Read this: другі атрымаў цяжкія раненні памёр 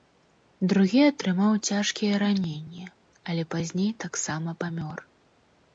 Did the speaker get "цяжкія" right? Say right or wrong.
right